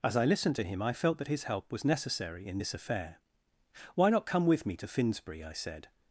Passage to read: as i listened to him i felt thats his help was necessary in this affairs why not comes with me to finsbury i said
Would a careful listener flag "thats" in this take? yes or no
yes